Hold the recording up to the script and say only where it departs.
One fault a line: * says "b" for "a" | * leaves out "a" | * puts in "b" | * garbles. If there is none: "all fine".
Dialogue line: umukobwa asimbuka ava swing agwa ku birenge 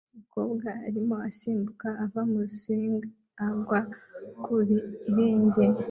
* puts in "arimo"
* puts in "muri"